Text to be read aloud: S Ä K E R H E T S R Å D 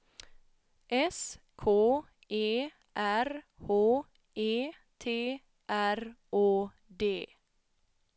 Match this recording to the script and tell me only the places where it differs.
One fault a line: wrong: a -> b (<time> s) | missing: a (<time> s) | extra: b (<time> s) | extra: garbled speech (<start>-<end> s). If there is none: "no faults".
missing: Ä (1.4 s)
missing: S (5.4 s)